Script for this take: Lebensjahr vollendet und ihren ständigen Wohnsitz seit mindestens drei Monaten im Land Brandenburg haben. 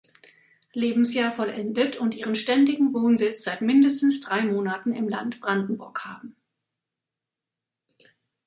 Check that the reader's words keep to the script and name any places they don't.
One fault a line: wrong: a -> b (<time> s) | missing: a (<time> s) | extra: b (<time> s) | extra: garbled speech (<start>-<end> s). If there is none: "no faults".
no faults